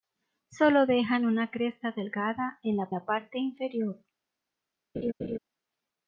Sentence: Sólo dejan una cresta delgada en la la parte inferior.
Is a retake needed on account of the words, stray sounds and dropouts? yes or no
yes